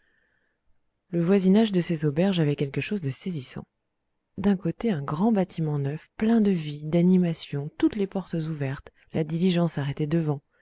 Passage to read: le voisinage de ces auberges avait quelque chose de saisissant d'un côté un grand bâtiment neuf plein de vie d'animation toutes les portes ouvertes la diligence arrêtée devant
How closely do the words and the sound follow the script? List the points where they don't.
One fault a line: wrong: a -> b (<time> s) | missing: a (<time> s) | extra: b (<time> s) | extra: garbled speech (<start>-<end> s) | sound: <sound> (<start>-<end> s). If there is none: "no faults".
no faults